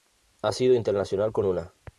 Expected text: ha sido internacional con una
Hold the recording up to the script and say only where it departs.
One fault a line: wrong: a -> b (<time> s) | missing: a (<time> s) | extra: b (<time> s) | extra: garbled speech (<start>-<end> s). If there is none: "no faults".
no faults